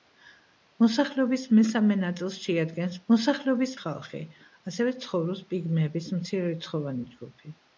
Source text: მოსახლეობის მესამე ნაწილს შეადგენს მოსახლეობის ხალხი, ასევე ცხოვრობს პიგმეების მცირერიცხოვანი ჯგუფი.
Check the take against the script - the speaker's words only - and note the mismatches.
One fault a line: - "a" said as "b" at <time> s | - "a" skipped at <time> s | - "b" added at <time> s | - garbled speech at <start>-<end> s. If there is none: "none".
none